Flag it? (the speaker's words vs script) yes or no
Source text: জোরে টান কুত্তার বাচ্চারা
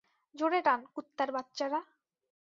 no